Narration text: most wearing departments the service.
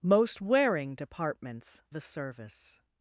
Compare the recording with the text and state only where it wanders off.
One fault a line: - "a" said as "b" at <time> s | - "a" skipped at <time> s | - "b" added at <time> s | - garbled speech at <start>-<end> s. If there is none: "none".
none